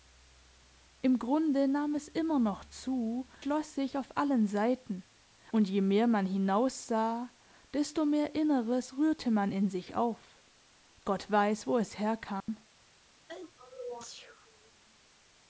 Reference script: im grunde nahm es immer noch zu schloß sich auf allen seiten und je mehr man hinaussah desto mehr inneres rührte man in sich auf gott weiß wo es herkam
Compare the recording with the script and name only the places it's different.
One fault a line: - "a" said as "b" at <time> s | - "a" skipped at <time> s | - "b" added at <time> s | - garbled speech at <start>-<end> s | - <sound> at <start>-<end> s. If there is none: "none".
- dropout at 12.4-12.5 s
- sneeze at 13.3-14.7 s